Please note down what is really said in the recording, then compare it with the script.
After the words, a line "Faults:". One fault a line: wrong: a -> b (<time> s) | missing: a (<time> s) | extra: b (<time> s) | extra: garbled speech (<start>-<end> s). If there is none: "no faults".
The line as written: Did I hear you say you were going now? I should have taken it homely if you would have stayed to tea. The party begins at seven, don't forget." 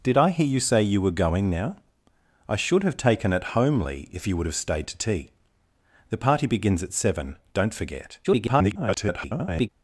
Did I hear you say you were going now? I should have taken it homely if you would have stayed to tea. The party begins at seven, don't forget." [garbled]
Faults:
extra: garbled speech (8.2-9.7 s)